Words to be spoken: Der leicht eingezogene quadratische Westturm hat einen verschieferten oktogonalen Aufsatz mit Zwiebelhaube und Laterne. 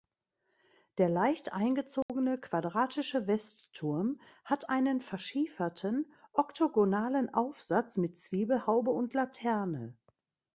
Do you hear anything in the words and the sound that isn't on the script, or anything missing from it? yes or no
yes